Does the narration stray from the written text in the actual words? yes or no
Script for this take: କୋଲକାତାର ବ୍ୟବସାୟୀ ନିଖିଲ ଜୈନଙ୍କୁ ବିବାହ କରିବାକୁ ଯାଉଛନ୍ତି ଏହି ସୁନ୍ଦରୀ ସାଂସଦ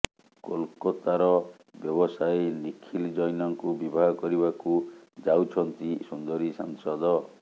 yes